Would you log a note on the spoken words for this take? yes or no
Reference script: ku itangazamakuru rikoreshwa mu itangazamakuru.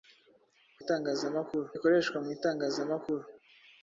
no